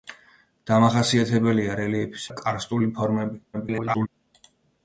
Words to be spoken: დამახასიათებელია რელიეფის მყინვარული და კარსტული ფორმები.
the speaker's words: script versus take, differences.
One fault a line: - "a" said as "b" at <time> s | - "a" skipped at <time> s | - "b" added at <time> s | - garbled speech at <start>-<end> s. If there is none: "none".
- "მყინვარული" skipped at 2.3 s
- garbled speech at 3.5-4.1 s